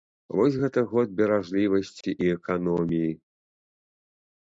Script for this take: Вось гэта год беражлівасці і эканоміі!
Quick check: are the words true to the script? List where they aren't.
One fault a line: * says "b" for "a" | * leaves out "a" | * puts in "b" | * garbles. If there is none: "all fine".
all fine